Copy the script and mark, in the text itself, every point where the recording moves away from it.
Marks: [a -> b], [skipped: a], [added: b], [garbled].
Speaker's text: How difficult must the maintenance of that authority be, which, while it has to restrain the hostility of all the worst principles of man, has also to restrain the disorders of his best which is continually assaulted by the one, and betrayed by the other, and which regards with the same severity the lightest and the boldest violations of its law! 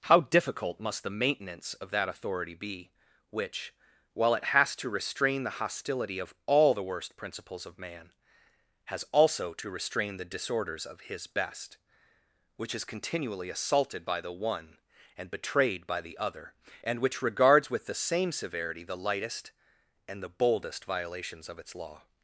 How difficult must the maintenance of that authority be, which, while it has to restrain the hostility of all the worst principles of man, has also to restrain the disorders of his best which is continually assaulted by the one, and betrayed by the other, and which regards with the same severity the lightest and the boldest violations of its law!